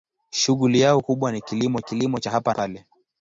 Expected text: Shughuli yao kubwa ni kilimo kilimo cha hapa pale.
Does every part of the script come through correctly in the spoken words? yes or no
yes